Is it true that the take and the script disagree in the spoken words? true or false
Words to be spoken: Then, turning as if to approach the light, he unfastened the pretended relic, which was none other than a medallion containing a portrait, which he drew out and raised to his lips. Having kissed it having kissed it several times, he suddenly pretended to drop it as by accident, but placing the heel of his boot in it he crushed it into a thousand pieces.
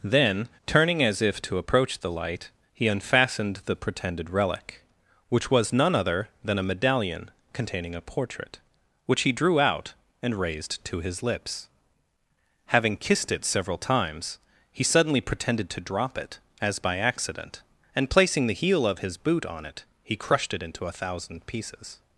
true